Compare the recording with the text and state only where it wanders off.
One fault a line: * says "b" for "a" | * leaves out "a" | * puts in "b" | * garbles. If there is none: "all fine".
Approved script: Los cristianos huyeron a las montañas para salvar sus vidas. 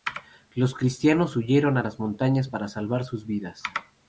all fine